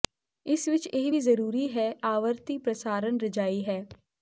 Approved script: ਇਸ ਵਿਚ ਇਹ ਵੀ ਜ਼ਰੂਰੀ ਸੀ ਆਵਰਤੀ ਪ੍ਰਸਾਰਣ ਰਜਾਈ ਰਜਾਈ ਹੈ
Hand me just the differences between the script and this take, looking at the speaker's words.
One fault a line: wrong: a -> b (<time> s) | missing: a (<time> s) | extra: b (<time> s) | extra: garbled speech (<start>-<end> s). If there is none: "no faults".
wrong: ਸੀ -> ਹੈ (1.8 s)
missing: ਰਜਾਈ (3.6 s)